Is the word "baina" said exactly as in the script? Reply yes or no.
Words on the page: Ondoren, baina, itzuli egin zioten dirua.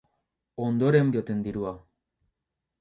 no